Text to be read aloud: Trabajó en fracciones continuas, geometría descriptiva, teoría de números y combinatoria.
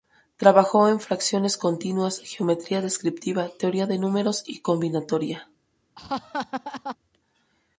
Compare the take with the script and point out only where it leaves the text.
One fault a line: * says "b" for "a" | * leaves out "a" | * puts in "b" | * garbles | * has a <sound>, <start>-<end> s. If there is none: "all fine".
* has a laugh, 5.9-7.0 s